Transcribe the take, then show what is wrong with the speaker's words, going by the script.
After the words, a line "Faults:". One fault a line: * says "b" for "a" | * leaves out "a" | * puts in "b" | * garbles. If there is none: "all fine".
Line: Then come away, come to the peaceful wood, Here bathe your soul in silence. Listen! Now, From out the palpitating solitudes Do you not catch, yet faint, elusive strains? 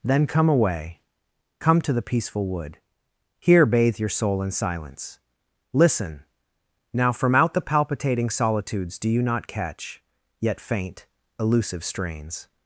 Then come away, come to the peaceful wood, Here bathe your soul in silence. Listen! Now, From out the palpitating solitudes Do you not catch, yet faint, elusive strains?
Faults:
all fine